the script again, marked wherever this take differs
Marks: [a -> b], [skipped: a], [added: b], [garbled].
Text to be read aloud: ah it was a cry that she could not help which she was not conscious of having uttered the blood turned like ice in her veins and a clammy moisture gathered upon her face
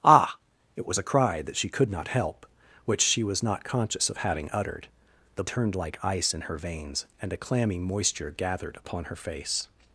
ah it was a cry that she could not help which she was not conscious of having uttered the [skipped: blood] turned like ice in her veins and a clammy moisture gathered upon her face